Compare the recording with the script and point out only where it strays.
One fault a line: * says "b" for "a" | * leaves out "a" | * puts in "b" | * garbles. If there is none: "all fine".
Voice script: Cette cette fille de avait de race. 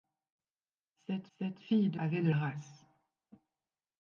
all fine